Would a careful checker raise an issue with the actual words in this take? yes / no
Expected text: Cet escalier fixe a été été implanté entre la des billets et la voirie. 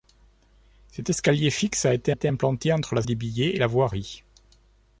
no